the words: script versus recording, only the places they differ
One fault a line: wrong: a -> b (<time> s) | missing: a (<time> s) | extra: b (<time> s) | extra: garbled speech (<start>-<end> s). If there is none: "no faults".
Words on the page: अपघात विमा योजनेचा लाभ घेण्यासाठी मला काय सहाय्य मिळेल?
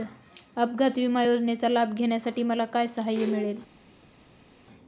no faults